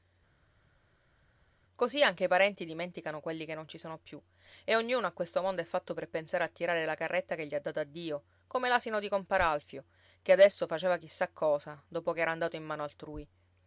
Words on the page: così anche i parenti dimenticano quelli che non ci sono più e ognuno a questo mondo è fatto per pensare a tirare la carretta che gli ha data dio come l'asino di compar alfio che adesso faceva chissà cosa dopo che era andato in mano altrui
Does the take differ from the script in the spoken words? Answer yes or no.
no